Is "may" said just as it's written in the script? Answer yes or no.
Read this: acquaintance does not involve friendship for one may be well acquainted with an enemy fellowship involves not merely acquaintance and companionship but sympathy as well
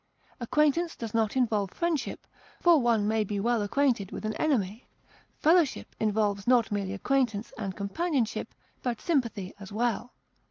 yes